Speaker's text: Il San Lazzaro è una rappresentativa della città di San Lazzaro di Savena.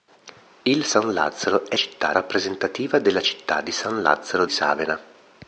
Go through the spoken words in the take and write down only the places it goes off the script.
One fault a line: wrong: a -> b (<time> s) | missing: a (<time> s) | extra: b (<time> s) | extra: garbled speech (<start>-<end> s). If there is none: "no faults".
wrong: una -> città (1.7 s)
missing: di (4.5 s)